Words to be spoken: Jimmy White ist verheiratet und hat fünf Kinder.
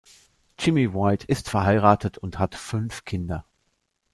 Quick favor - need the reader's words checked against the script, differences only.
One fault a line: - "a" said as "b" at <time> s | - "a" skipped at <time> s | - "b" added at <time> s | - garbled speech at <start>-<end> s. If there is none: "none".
none